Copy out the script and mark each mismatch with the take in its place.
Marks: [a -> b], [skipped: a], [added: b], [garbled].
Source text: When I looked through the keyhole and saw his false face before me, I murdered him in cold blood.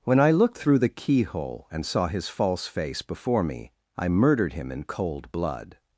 When I looked through the keyhole and saw his false face before me, I murdered him in cold blood.